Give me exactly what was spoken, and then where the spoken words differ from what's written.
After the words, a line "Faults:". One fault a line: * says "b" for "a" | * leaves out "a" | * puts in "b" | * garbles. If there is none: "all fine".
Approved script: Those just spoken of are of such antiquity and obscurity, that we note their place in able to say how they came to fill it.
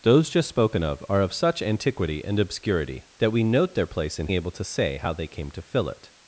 Those just spoken of are of such antiquity and obscurity, that we note their place in able to say how they came to fill it.
Faults:
all fine